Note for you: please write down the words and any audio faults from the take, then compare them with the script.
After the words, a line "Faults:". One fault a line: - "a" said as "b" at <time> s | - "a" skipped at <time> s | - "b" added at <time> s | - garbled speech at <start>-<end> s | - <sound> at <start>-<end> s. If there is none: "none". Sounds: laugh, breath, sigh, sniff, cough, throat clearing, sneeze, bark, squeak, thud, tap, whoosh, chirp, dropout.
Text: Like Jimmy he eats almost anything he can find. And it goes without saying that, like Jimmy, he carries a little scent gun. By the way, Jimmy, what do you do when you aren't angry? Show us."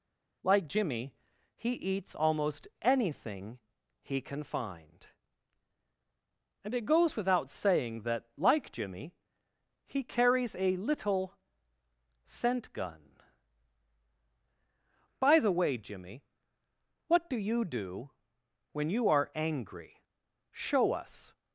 Like Jimmy he eats almost anything he can find. And it goes without saying that, like Jimmy, he carries a little scent gun. By the way, Jimmy, what do you do when you are angry? Show us."
Faults:
- "aren't" said as "are" at 19.1 s